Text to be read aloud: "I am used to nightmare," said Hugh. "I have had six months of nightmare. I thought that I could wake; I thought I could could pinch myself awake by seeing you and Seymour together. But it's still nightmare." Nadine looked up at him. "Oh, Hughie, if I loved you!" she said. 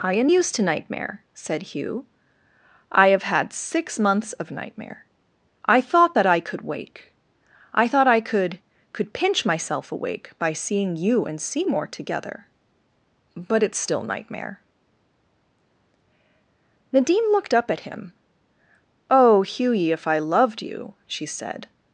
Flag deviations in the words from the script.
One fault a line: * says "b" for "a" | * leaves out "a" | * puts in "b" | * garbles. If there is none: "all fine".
all fine